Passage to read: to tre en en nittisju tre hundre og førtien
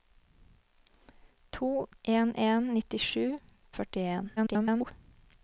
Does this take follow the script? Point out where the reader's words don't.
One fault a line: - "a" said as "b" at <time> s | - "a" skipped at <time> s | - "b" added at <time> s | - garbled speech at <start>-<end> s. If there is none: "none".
- "tre" skipped at 1.9 s
- "tre hundre" skipped at 3.3 s
- garbled speech at 4.4-4.9 s